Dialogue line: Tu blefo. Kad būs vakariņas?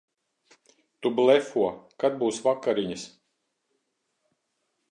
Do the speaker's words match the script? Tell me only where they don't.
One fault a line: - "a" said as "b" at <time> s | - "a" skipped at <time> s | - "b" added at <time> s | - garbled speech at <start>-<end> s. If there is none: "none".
none